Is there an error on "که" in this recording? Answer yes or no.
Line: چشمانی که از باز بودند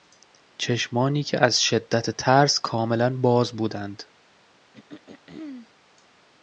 no